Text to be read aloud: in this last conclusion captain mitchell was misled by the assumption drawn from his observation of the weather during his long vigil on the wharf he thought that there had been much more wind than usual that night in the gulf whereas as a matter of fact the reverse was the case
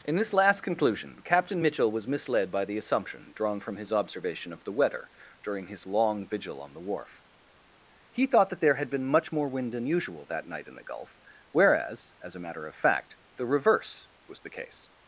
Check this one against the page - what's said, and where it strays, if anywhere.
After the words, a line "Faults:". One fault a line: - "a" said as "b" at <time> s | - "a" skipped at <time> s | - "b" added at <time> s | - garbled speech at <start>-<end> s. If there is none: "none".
in this last conclusion captain mitchell was misled by the assumption drawn from his observation of the weather during his long vigil on the wharf he thought that there had been much more wind than usual that night in the gulf whereas as a matter of fact the reverse was the case
Faults:
none